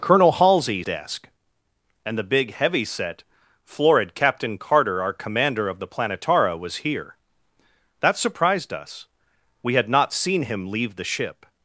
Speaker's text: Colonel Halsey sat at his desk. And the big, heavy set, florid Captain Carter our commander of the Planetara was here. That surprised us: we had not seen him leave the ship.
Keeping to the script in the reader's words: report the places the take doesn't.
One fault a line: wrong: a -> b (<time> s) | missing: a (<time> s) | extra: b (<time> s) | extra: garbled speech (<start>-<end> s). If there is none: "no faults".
missing: sat at his (0.8 s)